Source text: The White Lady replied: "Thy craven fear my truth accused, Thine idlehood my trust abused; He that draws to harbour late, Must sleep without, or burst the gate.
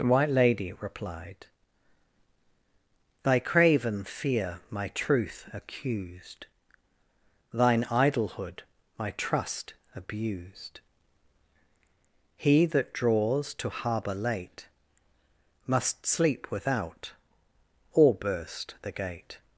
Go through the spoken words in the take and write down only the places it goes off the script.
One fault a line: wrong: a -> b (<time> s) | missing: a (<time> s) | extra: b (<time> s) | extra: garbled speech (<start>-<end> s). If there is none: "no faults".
no faults